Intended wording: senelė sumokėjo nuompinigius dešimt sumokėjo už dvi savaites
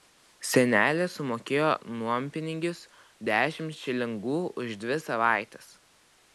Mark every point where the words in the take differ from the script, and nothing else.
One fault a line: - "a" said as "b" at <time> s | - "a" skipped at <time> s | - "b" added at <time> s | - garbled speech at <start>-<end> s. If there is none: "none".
- "sumokėjo" said as "šilingų" at 3.8 s